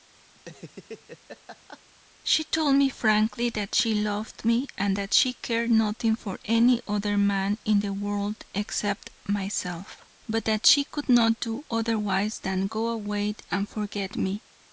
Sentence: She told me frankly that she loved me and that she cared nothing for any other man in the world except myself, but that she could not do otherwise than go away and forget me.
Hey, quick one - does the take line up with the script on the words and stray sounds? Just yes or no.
no